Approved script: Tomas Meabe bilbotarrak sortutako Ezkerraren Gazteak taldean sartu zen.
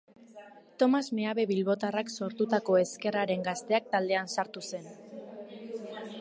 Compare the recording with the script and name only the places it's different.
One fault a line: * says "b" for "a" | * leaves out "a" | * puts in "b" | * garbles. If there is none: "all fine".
all fine